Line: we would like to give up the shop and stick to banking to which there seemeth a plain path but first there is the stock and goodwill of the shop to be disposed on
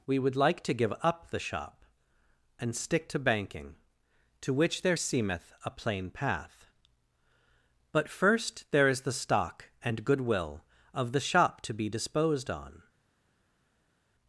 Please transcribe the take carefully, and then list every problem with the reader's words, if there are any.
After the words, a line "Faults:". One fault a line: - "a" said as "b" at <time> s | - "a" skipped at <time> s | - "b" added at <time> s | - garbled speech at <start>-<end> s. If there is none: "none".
we would like to give up the shop and stick to banking to which there seemeth a plain path but first there is the stock and goodwill of the shop to be disposed on
Faults:
none